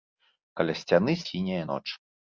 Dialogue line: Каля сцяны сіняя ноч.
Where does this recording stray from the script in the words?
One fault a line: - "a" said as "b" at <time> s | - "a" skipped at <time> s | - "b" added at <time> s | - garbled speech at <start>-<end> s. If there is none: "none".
none